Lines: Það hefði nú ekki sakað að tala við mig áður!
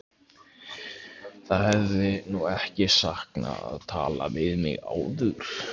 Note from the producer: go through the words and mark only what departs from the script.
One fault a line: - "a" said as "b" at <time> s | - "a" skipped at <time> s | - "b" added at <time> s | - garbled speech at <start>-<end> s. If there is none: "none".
none